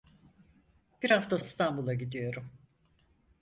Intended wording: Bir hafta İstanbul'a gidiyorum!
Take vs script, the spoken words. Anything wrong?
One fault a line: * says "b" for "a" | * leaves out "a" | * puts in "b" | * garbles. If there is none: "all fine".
all fine